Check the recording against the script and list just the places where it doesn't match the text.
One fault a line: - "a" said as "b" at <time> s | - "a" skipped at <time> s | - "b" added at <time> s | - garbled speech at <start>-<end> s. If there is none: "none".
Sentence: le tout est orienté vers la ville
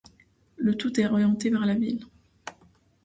none